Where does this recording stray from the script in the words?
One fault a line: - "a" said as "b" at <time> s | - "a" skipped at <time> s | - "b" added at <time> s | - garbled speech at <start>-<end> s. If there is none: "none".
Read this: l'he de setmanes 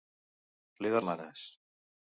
none